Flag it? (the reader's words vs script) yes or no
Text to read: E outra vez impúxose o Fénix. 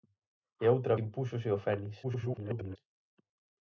yes